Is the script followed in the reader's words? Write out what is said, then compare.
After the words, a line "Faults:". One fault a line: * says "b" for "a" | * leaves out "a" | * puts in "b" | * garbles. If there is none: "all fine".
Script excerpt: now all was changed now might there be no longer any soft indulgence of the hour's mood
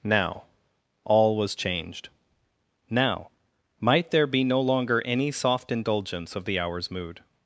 now all was changed now might there be no longer any soft indulgence of the hour's mood
Faults:
all fine